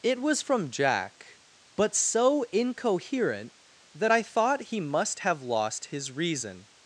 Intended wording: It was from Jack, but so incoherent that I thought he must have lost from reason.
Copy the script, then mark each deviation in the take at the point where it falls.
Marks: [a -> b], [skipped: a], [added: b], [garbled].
It was from Jack, but so incoherent that I thought he must have lost [from -> his] reason.